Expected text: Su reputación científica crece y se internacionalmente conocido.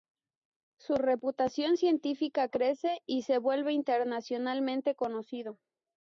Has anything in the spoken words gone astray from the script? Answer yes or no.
yes